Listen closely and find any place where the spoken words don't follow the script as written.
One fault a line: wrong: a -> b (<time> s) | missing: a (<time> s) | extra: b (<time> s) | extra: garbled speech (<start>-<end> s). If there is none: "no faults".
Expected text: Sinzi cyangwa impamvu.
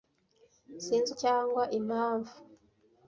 no faults